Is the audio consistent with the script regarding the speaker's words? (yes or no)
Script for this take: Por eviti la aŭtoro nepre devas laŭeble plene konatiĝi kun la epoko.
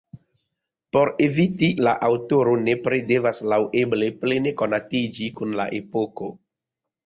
yes